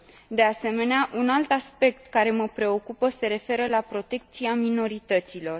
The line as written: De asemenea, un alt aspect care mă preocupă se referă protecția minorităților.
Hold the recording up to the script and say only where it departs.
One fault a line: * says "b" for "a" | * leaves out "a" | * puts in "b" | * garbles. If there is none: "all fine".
* puts in "la"